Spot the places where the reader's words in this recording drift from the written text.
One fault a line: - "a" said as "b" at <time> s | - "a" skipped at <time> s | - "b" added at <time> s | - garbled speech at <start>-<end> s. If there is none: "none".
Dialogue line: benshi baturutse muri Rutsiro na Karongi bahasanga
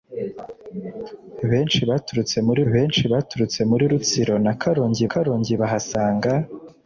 - "benshi baturutse muri" added at 2.7 s
- "Karongi" added at 5.1 s